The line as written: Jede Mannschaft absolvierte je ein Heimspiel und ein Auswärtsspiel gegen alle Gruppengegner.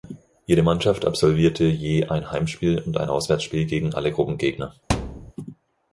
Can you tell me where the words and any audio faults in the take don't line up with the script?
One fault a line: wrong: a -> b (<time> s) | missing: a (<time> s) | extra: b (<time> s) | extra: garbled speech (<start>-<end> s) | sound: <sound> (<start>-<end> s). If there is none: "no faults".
sound: thud (4.9-5.3 s)